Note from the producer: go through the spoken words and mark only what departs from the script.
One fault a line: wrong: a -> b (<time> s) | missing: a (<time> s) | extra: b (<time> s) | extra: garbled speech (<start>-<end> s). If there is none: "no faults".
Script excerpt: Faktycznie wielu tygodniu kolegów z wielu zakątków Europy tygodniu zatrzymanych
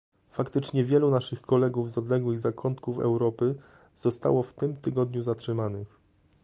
wrong: tygodniu -> naszych (1.1 s)
wrong: wielu -> odległych (2.0 s)
extra: zostało w tym (3.9 s)